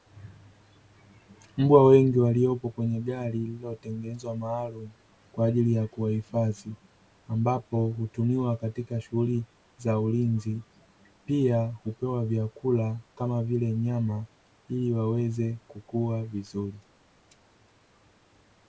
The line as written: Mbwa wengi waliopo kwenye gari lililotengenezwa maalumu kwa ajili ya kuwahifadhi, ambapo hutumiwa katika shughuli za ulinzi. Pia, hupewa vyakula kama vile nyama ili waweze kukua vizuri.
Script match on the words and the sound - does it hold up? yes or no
yes